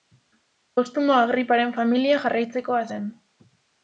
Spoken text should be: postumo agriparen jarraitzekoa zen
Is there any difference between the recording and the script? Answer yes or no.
yes